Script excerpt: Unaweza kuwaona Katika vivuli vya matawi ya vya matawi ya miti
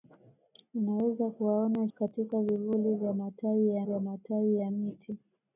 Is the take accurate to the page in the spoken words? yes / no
yes